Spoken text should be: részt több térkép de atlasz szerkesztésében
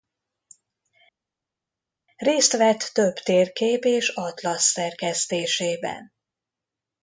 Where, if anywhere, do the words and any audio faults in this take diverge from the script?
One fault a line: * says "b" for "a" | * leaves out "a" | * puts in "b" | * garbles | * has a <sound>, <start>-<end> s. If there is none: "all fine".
* puts in "vett"
* says "és" for "de"